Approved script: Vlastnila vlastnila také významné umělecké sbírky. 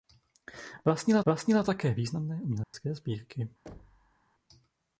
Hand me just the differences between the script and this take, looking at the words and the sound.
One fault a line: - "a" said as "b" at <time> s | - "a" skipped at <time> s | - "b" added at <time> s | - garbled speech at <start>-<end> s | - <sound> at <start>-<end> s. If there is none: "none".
- dropout at 2.6-2.7 s
- thud at 3.7-4.2 s